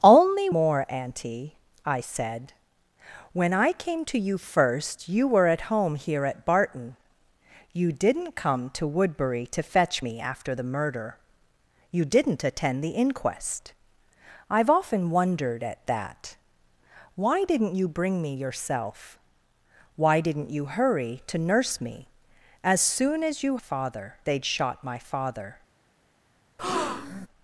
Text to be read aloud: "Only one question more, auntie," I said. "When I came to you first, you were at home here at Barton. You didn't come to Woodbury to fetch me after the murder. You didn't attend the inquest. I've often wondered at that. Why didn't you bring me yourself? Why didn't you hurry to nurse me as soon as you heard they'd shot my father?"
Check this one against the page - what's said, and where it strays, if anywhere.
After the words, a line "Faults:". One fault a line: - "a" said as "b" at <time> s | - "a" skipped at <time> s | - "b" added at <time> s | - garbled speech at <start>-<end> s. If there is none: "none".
"Only more, auntie," I said. "When I came to you first, you were at home here at Barton. You didn't come to Woodbury to fetch me after the murder. You didn't attend the inquest. I've often wondered at that. Why didn't you bring me yourself? Why didn't you hurry to nurse me as soon as you father they'd shot my father?"
Faults:
- "one question" skipped at 0.5 s
- "heard" said as "father" at 23.6 s